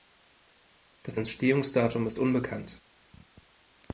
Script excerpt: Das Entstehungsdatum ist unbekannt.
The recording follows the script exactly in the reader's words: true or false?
true